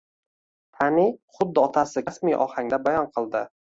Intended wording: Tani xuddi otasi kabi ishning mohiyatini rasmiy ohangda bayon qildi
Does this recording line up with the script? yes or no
no